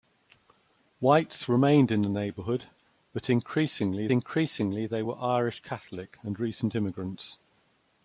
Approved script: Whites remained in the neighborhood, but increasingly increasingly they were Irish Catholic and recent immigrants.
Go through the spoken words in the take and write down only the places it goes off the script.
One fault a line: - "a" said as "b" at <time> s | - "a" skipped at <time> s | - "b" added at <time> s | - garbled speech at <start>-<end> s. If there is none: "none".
none